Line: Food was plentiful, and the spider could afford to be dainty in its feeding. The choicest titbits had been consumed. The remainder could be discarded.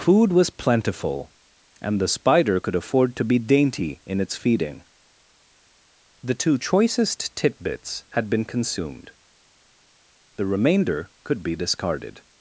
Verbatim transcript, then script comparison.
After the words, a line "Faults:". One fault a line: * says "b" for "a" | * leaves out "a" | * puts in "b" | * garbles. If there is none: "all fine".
Food was plentiful, and the spider could afford to be dainty in its feeding. The two choicest titbits had been consumed. The remainder could be discarded.
Faults:
* puts in "two"